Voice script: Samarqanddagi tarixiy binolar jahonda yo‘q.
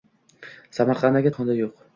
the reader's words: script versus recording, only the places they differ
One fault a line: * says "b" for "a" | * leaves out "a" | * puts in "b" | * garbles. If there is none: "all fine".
* leaves out "tarixiy binolar"